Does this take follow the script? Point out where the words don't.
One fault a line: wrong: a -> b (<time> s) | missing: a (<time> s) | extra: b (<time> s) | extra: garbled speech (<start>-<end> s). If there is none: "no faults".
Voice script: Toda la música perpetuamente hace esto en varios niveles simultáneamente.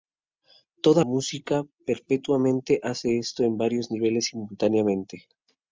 missing: la (1.0 s)